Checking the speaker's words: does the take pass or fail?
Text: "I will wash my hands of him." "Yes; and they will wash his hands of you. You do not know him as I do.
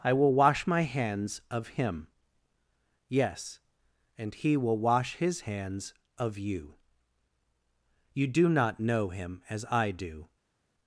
fail